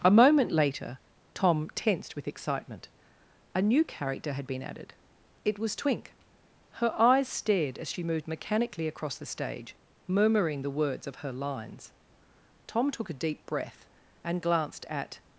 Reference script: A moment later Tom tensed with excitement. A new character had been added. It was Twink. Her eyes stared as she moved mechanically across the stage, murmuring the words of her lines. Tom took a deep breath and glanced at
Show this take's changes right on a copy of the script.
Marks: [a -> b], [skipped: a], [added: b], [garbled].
A moment later Tom tensed with excitement. A new character had been added. It was Twink. Her eyes stared as she moved mechanically across the stage, murmuring the words of her lines. Tom took a deep breath and glanced at